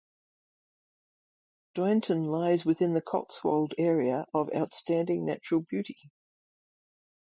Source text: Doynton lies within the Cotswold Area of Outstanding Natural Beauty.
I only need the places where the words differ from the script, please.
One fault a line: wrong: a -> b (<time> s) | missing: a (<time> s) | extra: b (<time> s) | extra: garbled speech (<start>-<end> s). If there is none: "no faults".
no faults